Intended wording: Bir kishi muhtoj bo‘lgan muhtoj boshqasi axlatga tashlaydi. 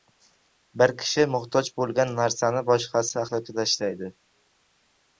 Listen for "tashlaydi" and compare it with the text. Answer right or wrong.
right